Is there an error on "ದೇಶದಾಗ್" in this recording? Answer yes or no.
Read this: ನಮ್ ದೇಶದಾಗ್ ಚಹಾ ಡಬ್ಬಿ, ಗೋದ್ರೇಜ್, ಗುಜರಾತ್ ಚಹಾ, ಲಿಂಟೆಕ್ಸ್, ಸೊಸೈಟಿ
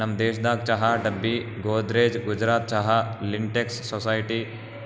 no